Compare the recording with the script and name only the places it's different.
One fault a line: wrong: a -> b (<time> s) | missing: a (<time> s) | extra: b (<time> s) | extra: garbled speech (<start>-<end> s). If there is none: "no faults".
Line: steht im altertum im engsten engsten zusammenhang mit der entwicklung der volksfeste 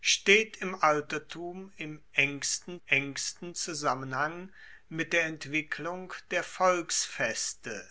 no faults